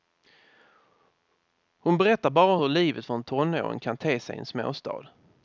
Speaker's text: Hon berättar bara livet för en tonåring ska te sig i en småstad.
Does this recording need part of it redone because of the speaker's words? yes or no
yes